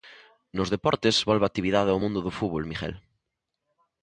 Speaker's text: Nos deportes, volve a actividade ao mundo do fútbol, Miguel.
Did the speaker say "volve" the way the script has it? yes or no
yes